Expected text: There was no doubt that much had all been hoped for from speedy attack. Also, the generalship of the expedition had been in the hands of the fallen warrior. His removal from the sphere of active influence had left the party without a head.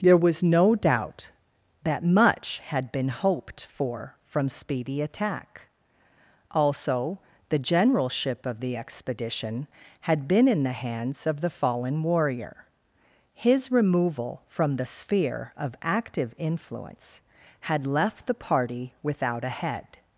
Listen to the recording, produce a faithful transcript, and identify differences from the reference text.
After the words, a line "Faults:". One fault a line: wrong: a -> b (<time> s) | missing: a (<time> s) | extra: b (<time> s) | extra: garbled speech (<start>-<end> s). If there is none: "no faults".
There was no doubt that much had been hoped for from speedy attack. Also, the generalship of the expedition had been in the hands of the fallen warrior. His removal from the sphere of active influence had left the party without a head.
Faults:
missing: all (2.9 s)